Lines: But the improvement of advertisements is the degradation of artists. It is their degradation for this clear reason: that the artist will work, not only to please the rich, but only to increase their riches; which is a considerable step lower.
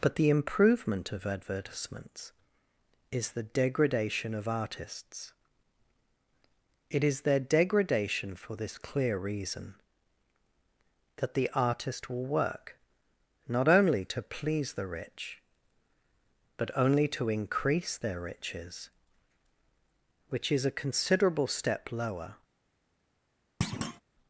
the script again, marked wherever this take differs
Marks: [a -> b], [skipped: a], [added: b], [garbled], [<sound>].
But the improvement of advertisements is the degradation of artists. It is their degradation for this clear reason: that the artist will work, not only to please the rich, but only to increase their riches; which is a considerable step lower. [thud]